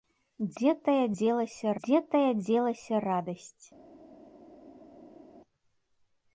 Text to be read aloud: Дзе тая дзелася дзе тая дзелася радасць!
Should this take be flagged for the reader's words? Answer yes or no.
no